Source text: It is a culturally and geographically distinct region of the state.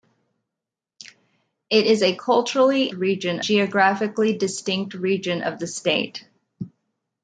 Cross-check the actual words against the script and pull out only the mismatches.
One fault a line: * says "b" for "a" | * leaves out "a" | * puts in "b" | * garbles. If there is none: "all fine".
* says "region" for "and"